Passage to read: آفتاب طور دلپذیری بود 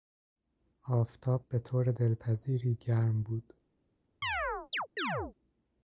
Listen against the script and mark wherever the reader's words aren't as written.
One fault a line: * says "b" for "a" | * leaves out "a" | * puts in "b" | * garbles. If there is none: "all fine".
* puts in "به"
* puts in "گرم"